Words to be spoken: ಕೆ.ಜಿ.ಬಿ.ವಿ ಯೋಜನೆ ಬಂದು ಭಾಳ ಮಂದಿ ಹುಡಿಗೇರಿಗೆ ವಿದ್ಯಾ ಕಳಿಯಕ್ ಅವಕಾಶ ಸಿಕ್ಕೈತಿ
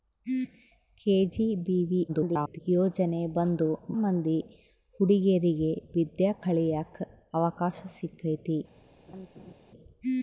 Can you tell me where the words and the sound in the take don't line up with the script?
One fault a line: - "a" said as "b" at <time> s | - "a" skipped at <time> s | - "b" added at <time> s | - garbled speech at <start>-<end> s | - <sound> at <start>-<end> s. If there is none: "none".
- garbled speech at 2.1-2.6 s
- "ಭಾಳ" skipped at 3.7 s
- laugh at 9.1-9.5 s